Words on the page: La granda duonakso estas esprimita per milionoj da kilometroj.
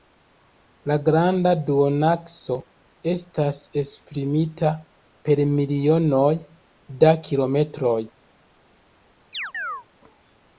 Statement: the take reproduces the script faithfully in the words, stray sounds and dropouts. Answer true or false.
false